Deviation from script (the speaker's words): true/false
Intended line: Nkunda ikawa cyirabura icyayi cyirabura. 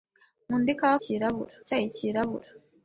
false